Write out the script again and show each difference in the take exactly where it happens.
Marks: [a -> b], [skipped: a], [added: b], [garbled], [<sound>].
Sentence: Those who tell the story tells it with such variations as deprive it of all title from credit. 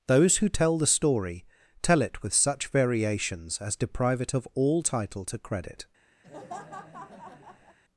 Those who tell the story [tells -> tell] it with such variations as deprive it of all title [from -> to] credit. [laugh]